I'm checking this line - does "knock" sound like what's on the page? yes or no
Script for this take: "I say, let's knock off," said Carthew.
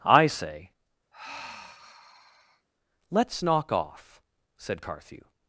yes